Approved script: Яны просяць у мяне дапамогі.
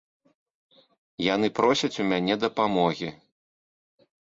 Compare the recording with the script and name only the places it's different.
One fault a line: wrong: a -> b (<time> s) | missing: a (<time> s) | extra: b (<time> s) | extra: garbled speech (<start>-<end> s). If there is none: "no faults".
no faults